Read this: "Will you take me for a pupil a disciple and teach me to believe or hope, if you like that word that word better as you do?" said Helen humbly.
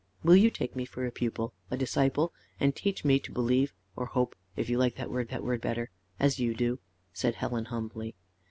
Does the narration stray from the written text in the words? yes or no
no